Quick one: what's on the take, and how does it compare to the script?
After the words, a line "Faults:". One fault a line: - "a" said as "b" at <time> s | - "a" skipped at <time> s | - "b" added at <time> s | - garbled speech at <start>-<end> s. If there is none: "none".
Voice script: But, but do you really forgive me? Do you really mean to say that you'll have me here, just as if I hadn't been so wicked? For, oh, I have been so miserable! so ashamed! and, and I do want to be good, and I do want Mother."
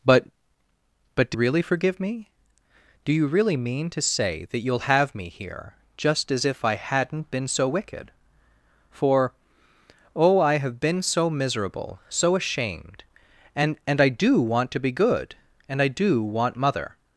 But, but do really forgive me? Do you really mean to say that you'll have me here, just as if I hadn't been so wicked? For, oh, I have been so miserable! so ashamed! and, and I do want to be good, and I do want Mother."
Faults:
- "you" skipped at 1.4 s